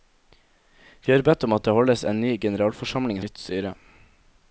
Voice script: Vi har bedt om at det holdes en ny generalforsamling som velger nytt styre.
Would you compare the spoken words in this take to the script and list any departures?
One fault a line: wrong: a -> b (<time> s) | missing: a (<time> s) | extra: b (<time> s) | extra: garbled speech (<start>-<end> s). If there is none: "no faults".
missing: som velger (3.2 s)